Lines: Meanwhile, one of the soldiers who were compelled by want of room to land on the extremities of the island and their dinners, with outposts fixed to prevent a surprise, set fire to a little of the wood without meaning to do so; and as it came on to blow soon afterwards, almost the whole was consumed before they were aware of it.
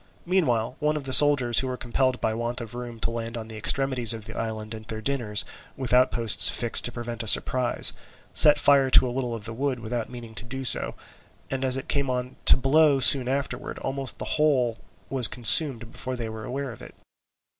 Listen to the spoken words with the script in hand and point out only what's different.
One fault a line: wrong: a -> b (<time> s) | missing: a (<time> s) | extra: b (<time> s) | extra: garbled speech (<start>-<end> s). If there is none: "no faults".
no faults